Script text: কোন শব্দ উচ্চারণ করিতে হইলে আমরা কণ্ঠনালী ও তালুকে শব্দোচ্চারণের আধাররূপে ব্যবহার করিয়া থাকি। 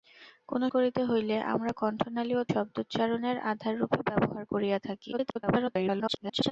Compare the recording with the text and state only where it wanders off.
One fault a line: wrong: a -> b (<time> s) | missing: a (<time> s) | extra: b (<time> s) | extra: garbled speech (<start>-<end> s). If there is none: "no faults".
missing: শব্দ উচ্চারণ (0.6 s)
missing: তালুকে (2.5 s)
extra: garbled speech (5.1-6.5 s)